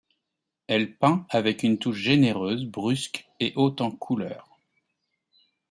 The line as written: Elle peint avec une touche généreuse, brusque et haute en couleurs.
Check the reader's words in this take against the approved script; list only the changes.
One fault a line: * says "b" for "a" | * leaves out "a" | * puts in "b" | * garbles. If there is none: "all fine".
all fine